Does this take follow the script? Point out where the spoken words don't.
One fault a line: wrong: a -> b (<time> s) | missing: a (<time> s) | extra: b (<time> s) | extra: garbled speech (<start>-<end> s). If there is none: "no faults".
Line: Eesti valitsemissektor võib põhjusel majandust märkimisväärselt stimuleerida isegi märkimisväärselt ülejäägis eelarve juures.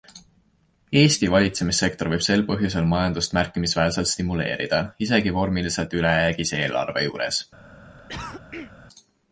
extra: sel (2.3 s)
wrong: märkimisväärselt -> vormiliselt (5.4 s)